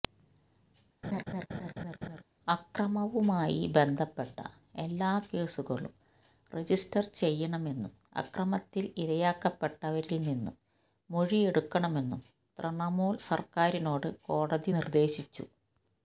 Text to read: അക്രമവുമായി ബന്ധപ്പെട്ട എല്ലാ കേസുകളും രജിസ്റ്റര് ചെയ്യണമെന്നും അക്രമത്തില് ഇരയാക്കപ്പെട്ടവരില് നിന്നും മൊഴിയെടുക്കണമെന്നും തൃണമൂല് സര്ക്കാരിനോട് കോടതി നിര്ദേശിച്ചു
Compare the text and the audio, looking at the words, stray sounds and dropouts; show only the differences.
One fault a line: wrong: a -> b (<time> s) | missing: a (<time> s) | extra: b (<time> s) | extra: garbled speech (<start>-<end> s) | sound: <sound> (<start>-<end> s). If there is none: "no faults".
sound: laugh (1.0-2.2 s)